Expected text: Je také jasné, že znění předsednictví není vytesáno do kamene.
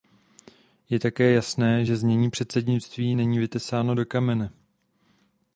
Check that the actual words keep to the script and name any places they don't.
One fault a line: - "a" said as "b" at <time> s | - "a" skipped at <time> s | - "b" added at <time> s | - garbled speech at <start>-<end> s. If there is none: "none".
none